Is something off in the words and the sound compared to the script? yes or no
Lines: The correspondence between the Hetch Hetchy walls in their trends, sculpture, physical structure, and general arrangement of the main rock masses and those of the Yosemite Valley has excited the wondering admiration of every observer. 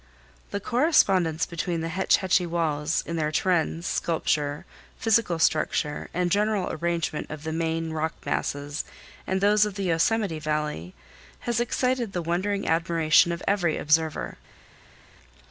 no